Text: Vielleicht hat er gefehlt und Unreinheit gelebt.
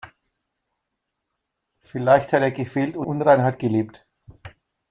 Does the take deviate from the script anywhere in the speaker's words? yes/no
no